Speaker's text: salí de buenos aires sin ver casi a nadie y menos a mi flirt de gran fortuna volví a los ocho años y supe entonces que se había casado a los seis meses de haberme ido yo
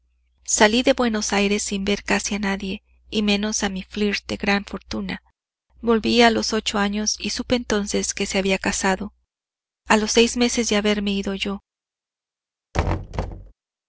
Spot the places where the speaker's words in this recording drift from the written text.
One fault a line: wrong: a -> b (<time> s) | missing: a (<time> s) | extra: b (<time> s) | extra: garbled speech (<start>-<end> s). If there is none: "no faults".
no faults